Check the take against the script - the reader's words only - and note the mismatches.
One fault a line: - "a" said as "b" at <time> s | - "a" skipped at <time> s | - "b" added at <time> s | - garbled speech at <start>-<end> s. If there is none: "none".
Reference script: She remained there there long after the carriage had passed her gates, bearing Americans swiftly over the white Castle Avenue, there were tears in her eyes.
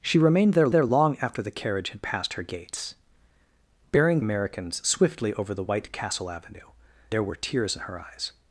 none